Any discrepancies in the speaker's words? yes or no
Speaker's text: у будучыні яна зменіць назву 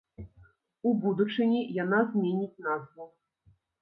no